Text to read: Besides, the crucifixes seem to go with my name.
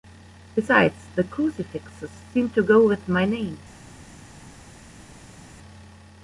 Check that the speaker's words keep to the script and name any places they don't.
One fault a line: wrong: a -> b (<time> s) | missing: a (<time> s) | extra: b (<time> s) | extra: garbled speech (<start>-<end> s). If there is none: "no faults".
no faults